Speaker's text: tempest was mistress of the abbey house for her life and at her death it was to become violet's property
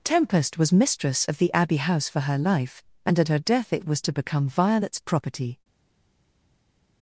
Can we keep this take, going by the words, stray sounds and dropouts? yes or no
yes